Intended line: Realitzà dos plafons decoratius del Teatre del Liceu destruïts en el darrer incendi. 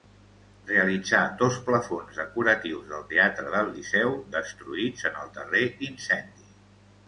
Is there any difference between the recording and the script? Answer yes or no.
no